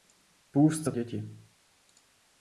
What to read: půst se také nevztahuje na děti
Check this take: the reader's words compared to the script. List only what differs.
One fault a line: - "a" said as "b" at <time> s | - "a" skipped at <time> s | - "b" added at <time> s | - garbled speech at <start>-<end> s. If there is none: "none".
- "také nevztahuje na" skipped at 0.9 s